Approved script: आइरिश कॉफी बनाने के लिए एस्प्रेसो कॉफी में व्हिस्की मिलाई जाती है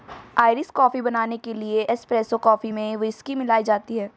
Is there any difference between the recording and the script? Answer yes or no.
no